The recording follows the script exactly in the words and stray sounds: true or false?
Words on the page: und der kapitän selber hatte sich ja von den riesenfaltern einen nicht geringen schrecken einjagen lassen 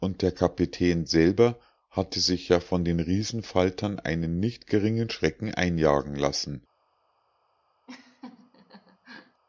false